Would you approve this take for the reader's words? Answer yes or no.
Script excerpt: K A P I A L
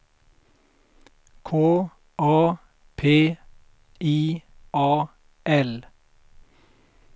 yes